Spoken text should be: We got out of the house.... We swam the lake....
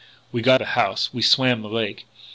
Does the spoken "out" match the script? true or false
false